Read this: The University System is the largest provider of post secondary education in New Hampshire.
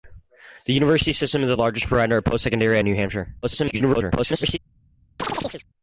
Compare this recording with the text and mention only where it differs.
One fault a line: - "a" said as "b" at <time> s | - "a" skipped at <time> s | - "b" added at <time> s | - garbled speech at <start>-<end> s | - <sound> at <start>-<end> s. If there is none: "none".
- "education" skipped at 2.8 s
- garbled speech at 3.4-4.6 s
- chirp at 5.2-5.6 s